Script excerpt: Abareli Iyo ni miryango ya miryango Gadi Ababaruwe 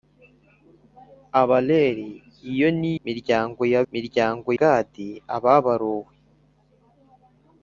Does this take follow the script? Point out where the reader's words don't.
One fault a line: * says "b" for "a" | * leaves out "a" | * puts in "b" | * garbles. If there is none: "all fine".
all fine